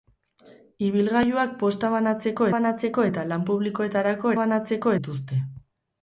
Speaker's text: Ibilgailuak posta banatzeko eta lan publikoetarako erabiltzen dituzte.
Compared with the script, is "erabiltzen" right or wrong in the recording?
wrong